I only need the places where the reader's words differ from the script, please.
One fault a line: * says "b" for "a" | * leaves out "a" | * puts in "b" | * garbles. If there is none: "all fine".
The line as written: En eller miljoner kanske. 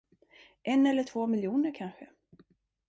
* puts in "två"